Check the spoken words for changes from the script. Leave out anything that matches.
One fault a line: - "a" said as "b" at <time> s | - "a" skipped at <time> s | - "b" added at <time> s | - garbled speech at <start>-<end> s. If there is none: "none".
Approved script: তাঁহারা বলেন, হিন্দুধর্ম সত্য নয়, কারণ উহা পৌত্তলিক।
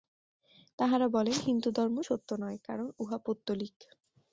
none